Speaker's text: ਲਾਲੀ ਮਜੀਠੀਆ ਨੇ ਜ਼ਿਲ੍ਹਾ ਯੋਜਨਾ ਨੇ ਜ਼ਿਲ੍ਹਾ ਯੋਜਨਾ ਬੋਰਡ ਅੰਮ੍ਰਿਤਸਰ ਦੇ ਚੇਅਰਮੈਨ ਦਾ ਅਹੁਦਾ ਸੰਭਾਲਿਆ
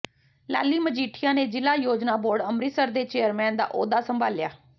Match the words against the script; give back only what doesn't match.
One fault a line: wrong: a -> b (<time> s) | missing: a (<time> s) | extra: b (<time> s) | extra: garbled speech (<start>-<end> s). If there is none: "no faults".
missing: ਨੇ ਜ਼ਿਲ੍ਹਾ ਯੋਜਨਾ (2.1 s)